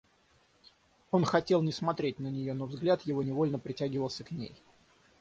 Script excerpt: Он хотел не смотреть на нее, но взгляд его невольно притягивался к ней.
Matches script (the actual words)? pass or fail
pass